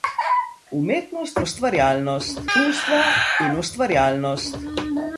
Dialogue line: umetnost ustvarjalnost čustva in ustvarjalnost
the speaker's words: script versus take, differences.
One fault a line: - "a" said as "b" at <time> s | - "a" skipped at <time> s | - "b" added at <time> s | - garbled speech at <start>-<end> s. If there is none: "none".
none